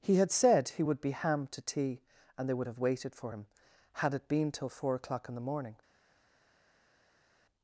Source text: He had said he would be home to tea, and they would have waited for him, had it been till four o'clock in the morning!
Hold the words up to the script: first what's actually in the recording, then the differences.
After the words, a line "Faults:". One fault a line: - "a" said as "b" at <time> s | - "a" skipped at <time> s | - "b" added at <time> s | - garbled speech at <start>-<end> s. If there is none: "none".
He had said he would be ham to tea, and they would have waited for him, had it been till four o'clock in the morning!
Faults:
- "home" said as "ham" at 1.1 s